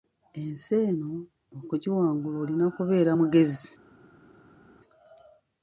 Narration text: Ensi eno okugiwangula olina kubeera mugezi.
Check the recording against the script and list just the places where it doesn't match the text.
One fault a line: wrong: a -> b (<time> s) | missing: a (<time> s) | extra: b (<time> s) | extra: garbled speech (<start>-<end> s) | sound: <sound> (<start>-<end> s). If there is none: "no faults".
no faults